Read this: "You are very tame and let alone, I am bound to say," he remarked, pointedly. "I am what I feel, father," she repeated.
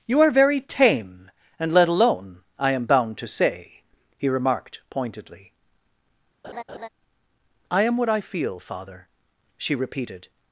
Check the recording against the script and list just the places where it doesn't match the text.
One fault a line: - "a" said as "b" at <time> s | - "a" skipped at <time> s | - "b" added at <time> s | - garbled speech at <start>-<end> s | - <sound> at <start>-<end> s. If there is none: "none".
- laugh at 6.4-6.9 s